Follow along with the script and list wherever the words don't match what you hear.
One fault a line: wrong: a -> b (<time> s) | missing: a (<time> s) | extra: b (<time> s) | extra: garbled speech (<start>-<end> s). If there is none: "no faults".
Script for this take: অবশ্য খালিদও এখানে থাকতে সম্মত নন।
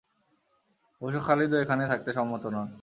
no faults